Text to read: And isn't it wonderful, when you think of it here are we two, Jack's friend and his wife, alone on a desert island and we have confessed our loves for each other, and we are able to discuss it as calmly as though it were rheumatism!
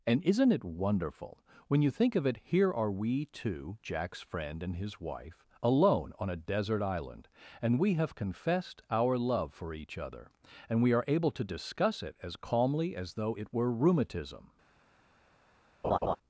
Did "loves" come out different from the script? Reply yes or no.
yes